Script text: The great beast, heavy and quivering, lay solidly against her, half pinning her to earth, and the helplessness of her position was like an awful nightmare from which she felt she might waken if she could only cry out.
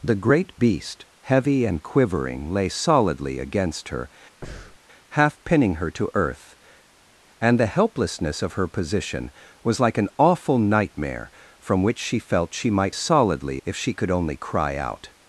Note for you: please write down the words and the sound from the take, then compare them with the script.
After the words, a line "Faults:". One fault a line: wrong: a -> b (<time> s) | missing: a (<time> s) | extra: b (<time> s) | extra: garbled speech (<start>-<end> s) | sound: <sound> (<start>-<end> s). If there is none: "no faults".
The great beast, heavy and quivering, lay solidly against her, half pinning her to earth, and the helplessness of her position was like an awful nightmare from which she felt she might solidly if she could only cry out.
Faults:
sound: breath (4.4-4.8 s)
wrong: waken -> solidly (12.9 s)